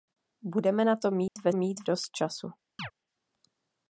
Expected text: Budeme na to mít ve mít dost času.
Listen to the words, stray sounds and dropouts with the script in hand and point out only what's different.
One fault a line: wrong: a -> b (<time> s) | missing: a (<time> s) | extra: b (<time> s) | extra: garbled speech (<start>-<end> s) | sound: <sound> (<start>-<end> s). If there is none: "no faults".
sound: dropout (1.3-1.4 s)
sound: chirp (2.8-2.9 s)